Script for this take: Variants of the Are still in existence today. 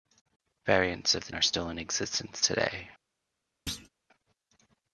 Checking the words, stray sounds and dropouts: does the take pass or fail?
fail